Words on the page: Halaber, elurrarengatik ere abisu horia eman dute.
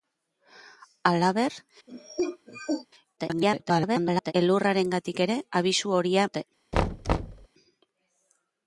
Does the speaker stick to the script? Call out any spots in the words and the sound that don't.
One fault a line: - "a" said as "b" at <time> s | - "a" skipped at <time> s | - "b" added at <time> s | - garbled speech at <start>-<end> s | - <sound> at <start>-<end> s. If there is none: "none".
- cough at 1.9-2.9 s
- garbled speech at 3.2-4.3 s
- "eman" skipped at 6.3 s
- thud at 6.7-7.5 s